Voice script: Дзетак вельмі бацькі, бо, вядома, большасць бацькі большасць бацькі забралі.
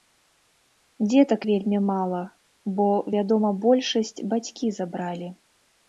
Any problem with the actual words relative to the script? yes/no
yes